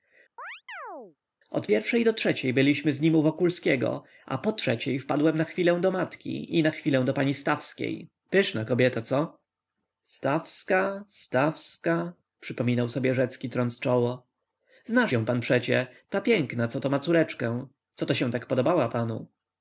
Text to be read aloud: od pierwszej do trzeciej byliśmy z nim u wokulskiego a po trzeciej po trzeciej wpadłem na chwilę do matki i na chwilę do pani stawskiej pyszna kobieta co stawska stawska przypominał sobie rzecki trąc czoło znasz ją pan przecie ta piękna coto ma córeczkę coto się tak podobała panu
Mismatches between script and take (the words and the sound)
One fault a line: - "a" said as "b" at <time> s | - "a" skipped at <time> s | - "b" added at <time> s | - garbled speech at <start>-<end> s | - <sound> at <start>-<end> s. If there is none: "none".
- chirp at 0.4-1.2 s
- "po trzeciej" skipped at 5.0 s